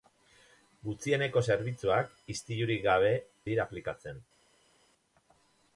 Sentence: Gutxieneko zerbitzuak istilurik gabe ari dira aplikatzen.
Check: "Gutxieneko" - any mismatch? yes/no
no